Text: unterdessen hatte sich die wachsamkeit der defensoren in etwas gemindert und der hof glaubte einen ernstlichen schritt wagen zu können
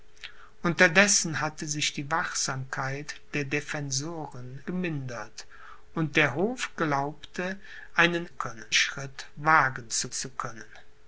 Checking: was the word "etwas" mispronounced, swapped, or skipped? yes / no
yes